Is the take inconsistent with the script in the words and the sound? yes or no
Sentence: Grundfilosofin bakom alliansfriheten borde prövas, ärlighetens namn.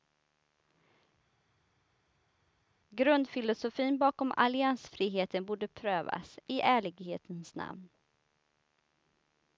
yes